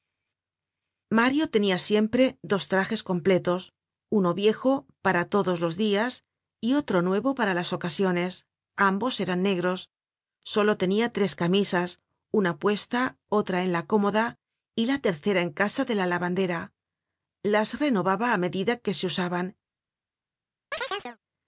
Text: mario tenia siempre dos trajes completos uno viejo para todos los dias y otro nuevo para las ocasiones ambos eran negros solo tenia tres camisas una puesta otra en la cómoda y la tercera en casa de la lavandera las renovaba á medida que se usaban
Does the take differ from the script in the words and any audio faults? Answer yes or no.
yes